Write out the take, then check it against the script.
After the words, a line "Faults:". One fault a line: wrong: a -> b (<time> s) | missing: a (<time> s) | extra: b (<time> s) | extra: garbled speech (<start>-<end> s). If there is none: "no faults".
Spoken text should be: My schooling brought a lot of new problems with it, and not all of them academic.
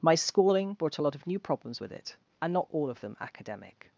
My schooling brought a lot of new problems with it, and not all of them academic.
Faults:
no faults